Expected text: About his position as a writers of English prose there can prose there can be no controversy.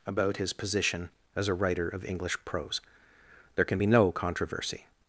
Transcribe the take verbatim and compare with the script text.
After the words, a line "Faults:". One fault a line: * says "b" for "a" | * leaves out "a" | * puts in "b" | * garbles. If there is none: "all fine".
About his position as a writer of English prose there can be no controversy.
Faults:
* says "writer" for "writers"
* leaves out "prose there can"